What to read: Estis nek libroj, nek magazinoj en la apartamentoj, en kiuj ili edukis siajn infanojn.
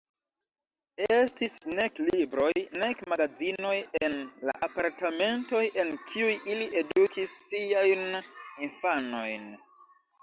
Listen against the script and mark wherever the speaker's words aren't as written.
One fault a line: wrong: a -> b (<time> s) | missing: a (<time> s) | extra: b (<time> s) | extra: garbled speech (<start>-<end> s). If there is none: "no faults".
no faults